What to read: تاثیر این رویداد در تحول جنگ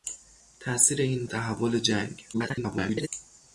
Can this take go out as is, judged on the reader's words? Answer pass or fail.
fail